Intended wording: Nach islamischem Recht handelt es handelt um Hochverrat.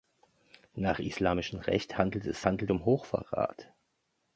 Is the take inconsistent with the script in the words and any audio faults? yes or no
no